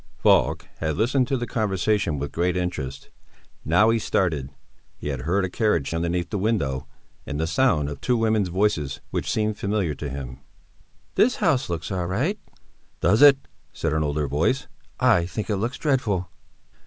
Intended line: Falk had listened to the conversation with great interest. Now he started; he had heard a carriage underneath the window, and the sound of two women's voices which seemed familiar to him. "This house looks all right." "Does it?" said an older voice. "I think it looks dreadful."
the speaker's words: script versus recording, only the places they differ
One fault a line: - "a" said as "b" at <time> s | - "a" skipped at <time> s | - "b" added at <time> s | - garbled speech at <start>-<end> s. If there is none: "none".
none